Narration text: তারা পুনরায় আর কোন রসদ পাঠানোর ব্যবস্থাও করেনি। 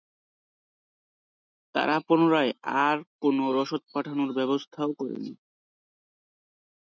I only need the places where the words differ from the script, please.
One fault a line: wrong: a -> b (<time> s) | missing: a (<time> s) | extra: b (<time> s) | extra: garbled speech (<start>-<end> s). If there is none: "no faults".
no faults